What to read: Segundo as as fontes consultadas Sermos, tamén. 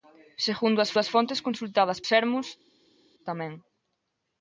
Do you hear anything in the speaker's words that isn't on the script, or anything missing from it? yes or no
no